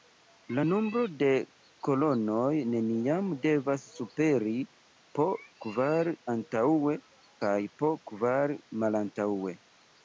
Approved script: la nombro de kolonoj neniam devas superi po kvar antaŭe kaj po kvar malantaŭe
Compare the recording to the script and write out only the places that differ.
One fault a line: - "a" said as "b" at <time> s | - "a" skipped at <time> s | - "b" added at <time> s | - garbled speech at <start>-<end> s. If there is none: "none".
none